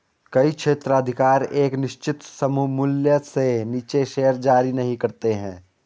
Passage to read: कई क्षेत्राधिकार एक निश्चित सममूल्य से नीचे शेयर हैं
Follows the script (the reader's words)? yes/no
no